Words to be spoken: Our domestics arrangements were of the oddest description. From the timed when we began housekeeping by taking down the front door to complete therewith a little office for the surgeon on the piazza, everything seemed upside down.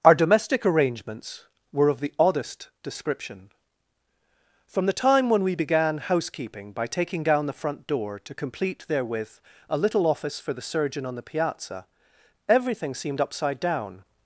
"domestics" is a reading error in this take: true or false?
true